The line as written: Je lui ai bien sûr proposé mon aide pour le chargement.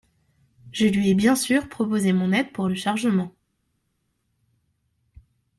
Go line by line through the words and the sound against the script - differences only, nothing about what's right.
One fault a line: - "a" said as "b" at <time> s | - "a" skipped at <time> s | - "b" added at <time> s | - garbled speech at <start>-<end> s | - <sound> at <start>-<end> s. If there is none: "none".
none